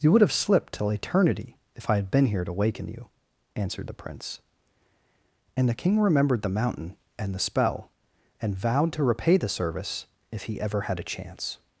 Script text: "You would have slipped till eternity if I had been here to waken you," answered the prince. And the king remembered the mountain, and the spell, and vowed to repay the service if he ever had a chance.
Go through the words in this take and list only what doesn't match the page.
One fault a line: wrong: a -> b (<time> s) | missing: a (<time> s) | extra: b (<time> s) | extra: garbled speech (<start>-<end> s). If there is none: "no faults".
no faults